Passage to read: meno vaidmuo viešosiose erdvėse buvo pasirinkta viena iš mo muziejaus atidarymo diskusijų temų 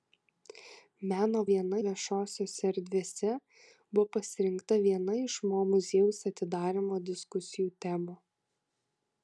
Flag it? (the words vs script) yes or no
yes